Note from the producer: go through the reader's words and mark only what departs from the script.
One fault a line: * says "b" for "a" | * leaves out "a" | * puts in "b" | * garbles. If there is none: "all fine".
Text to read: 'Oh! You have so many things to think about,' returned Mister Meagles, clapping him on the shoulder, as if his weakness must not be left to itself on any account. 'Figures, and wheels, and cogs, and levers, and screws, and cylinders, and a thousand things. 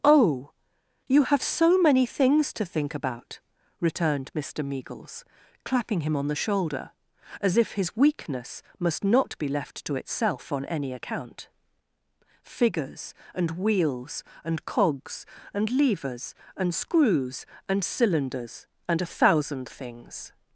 all fine